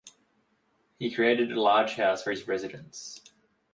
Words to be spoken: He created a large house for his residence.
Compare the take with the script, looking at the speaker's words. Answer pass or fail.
pass